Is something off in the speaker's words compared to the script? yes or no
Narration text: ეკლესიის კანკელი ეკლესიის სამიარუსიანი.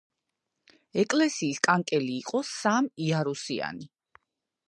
yes